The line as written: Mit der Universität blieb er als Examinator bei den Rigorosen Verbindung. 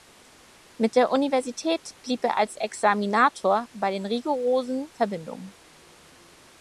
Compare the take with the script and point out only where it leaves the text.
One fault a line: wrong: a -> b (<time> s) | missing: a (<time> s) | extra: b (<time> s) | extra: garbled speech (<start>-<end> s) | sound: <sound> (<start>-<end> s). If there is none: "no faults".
no faults